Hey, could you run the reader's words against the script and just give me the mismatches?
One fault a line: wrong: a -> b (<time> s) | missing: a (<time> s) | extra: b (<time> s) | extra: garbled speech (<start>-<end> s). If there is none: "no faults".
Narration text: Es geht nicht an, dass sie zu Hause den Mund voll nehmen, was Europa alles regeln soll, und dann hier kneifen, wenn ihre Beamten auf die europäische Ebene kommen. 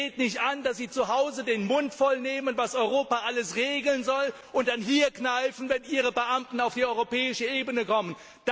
no faults